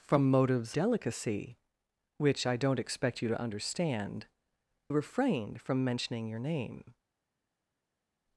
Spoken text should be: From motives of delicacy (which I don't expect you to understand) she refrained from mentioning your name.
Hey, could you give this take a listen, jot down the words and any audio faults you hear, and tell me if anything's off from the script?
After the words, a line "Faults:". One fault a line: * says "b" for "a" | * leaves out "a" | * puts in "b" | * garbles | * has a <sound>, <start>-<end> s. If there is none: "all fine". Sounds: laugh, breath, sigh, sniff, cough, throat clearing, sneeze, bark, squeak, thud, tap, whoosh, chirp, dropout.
From motives delicacy (which I don't expect you to understand) refrained from mentioning your name.
Faults:
* leaves out "of"
* leaves out "she"